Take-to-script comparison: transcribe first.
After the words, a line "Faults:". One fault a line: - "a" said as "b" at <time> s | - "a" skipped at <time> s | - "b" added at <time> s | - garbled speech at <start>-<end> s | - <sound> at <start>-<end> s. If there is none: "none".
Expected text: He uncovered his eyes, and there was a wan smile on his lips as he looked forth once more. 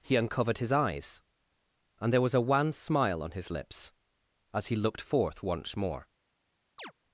He uncovered his eyes, and there was a wan smile on his lips as he looked forth once more.
Faults:
- chirp at 6.8-6.9 s